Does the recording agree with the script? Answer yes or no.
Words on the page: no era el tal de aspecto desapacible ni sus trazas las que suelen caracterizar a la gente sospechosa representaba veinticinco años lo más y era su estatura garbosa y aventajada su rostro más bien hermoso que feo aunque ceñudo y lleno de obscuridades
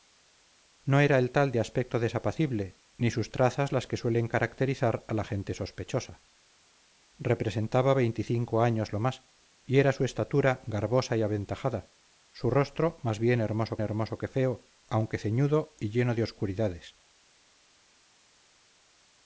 no